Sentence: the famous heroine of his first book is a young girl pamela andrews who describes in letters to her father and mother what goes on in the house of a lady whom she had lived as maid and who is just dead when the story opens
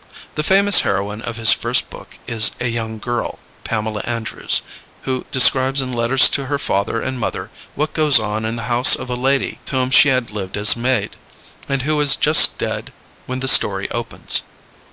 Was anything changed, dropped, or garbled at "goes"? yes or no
no